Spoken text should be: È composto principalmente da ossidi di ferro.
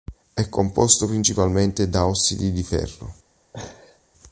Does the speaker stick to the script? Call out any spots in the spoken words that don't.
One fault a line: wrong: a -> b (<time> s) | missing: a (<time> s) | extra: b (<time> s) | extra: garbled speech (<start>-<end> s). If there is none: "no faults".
no faults